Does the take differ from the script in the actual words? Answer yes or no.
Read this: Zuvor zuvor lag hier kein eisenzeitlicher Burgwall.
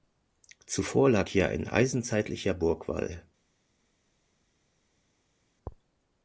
yes